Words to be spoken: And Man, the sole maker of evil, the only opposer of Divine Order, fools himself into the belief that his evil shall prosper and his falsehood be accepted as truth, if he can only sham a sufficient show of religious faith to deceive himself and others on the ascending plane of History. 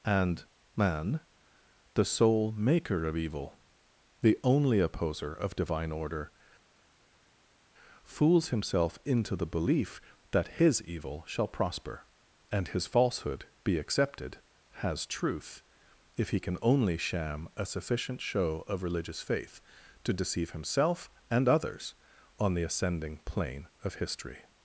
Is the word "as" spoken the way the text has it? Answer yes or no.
no